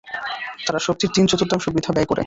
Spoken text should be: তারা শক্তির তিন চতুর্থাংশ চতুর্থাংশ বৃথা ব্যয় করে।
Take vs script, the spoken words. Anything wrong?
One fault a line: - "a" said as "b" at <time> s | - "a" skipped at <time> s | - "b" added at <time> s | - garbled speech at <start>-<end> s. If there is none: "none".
- "চতুর্থাংশ" skipped at 1.6 s